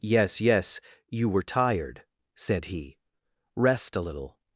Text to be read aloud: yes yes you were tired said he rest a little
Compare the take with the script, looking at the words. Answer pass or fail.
pass